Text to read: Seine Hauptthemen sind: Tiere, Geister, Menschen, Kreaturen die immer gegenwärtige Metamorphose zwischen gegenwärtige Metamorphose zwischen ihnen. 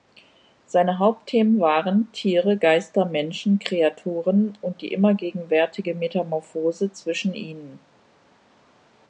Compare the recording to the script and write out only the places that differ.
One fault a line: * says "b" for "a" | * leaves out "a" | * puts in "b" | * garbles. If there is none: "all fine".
* says "waren" for "sind"
* puts in "und"
* leaves out "gegenwärtige Metamorphose zwischen"